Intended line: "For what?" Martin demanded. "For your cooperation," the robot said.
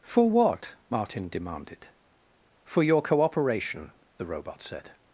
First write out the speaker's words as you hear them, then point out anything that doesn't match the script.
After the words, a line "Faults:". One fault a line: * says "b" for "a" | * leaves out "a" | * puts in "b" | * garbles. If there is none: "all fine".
"For what?" Martin demanded. "For your cooperation," the robot said.
Faults:
all fine